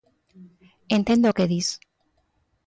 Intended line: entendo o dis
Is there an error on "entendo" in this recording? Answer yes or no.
no